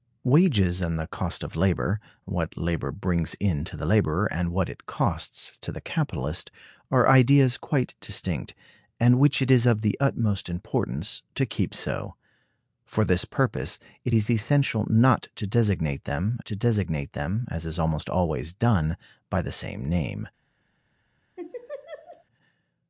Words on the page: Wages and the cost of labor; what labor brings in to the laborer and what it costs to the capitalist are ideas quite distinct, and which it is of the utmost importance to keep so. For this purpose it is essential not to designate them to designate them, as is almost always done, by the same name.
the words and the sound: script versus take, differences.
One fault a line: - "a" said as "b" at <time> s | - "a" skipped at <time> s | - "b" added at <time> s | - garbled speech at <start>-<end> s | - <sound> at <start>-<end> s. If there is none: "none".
- laugh at 21.4-22.2 s